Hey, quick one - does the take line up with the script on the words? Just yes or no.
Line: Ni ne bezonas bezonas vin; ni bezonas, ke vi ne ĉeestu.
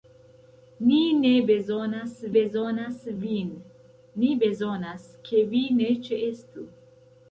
yes